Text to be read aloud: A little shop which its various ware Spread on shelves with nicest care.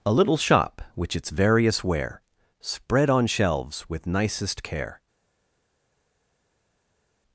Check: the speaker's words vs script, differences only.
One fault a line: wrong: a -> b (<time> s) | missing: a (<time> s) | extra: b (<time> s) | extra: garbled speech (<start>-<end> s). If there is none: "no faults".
no faults